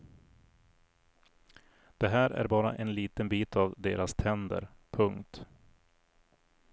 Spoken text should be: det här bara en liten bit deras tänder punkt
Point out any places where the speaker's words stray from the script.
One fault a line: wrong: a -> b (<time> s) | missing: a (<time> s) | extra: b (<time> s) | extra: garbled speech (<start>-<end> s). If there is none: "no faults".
extra: är (2.3 s)
extra: av (3.6 s)